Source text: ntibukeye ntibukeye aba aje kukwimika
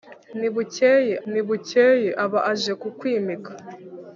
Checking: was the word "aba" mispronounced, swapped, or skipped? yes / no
no